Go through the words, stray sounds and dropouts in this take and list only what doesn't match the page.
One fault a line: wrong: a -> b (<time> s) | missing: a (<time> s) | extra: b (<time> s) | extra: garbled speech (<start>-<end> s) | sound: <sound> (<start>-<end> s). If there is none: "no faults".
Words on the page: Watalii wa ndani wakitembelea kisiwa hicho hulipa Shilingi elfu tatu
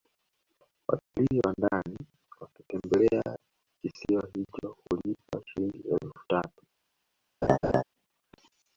sound: dropout (1.0-1.1 s)
sound: laugh (7.4-7.8 s)